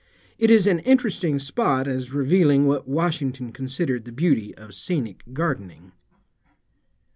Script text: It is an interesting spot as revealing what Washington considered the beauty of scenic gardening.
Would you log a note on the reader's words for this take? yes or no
no